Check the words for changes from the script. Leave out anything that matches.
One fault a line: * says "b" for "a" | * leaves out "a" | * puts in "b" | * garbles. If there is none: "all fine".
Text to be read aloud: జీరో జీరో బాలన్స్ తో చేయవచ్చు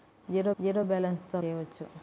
all fine